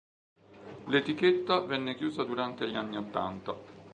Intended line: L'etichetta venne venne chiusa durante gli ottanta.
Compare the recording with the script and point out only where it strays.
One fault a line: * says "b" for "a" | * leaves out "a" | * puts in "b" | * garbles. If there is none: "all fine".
* leaves out "venne"
* puts in "anni"